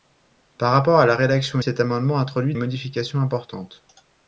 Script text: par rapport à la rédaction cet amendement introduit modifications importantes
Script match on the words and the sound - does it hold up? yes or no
yes